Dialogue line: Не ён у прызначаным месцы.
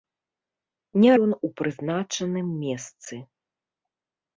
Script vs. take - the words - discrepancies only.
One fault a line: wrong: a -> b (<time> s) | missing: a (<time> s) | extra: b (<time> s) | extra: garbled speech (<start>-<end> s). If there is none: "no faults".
no faults